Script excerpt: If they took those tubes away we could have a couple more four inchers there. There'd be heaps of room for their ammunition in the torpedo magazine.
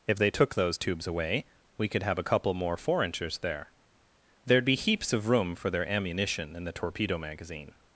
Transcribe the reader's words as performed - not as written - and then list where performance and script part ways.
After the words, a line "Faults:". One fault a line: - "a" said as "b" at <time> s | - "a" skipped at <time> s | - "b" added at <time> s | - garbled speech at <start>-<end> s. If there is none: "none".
If they took those tubes away we could have a couple more four inchers there. There'd be heaps of room for their ammunition in the torpedo magazine.
Faults:
none